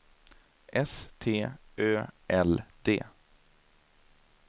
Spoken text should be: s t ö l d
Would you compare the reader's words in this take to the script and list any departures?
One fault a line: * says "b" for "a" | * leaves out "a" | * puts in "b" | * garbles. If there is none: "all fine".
all fine